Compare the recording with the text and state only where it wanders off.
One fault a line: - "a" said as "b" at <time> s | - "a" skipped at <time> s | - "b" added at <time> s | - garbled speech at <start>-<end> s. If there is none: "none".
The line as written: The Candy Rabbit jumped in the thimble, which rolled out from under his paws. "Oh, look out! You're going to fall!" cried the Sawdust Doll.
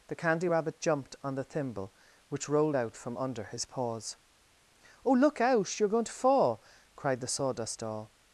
- "in" said as "on" at 1.2 s